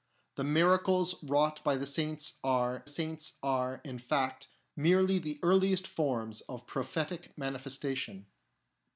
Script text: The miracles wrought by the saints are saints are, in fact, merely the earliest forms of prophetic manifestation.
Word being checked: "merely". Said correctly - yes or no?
yes